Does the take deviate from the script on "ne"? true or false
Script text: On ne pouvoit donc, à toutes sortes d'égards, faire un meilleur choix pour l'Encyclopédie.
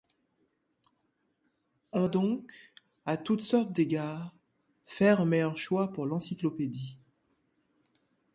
true